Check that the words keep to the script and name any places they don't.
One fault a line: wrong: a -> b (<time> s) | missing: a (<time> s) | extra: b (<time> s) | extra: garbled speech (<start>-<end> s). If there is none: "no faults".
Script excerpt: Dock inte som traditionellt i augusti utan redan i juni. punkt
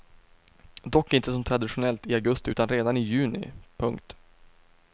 no faults